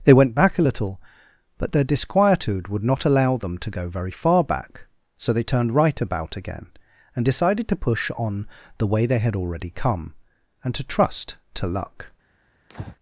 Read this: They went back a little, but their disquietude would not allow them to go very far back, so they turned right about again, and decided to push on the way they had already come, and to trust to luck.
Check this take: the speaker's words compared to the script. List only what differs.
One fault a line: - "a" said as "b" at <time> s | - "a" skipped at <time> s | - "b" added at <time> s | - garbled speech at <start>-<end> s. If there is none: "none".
none